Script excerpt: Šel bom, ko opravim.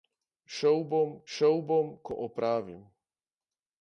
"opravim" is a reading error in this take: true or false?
false